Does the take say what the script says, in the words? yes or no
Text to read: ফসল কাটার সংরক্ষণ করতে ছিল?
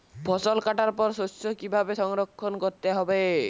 no